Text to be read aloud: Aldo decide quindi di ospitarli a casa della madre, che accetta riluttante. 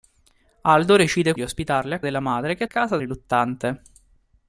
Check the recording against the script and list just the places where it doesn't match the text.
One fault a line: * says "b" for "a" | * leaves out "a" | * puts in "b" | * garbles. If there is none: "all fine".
* leaves out "quindi"
* leaves out "casa"
* says "casa" for "accetta"